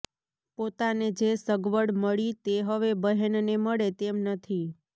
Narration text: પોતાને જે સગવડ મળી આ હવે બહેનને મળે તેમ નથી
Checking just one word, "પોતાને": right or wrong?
right